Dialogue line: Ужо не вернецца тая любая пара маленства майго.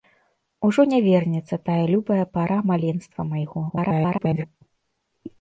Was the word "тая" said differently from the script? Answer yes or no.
no